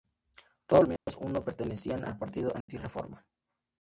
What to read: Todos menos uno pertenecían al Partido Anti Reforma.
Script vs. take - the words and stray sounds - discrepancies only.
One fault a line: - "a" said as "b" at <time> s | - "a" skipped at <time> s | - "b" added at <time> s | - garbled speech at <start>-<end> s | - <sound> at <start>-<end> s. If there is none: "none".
- dropout at 1.0-1.1 s
- dropout at 2.6-2.7 s